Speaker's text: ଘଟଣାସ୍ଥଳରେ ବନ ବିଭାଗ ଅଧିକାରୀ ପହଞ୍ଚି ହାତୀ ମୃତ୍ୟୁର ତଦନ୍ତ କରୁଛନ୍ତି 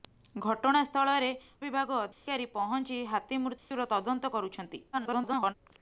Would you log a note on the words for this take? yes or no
yes